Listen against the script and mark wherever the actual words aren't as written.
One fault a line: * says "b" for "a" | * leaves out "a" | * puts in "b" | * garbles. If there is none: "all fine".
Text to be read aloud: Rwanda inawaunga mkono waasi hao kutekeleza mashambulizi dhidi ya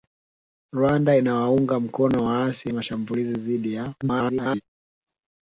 * leaves out "hao kutekeleza"
* garbles